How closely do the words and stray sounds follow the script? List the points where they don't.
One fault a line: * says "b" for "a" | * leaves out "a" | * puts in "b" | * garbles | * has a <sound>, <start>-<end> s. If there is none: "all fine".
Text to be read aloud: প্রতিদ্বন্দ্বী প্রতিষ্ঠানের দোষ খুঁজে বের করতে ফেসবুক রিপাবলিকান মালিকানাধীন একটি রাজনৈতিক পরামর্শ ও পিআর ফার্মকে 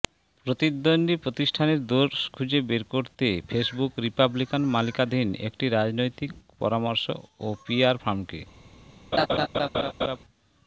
* has a laugh, 9.1-10.2 s